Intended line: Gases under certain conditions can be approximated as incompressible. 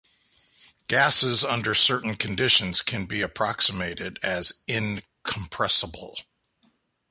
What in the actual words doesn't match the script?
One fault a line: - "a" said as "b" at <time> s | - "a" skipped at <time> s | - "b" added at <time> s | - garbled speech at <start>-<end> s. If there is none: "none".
none